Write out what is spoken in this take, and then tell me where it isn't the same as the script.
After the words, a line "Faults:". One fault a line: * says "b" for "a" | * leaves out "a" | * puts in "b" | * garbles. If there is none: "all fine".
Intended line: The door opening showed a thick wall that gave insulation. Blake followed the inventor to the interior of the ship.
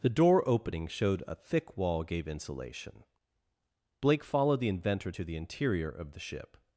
The door opening showed a thick wall gave insulation. Blake followed the inventor to the interior of the ship.
Faults:
* leaves out "that"